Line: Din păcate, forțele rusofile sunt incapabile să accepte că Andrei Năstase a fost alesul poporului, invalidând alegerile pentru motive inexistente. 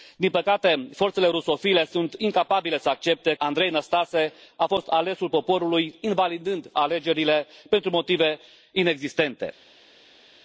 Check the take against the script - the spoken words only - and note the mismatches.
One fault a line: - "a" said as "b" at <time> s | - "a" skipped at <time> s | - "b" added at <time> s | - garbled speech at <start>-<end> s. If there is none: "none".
- "că" skipped at 3.3 s